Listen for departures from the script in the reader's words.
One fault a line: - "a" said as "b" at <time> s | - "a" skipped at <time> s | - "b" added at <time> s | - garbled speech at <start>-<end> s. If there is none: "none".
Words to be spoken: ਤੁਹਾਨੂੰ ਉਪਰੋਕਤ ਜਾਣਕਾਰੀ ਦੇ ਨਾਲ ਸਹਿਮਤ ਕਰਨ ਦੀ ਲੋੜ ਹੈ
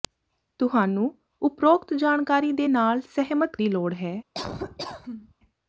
- "ਕਰਨ" skipped at 3.6 s